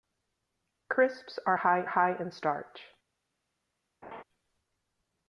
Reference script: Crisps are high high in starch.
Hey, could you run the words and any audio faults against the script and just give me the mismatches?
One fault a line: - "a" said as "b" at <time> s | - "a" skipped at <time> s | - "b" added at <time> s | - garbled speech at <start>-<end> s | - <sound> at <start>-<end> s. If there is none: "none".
- laugh at 4.0-4.2 s